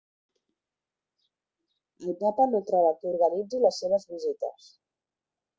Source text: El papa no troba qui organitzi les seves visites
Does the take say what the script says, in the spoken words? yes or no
yes